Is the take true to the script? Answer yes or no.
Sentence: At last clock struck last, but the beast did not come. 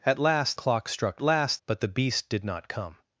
yes